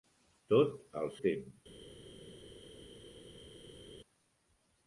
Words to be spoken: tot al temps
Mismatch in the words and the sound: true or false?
false